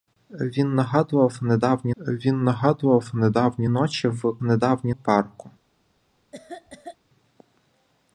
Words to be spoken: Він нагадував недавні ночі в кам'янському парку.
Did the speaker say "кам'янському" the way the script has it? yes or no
no